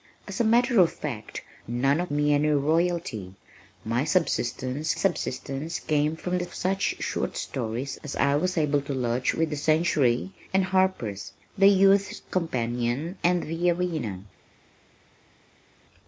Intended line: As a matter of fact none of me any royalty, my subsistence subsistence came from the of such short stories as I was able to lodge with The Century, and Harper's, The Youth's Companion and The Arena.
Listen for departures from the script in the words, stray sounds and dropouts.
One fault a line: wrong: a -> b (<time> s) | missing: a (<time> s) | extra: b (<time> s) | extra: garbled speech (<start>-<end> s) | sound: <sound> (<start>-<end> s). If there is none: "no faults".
no faults